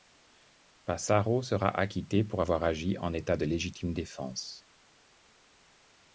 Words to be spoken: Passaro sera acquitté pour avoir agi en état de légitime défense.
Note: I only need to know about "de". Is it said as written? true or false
true